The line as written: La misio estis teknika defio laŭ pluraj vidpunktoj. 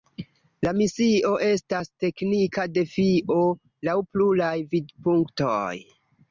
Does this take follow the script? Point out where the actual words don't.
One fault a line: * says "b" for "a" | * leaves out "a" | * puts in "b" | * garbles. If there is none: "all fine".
* says "estas" for "estis"